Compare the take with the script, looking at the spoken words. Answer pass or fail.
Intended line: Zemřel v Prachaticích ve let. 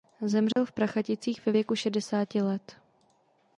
fail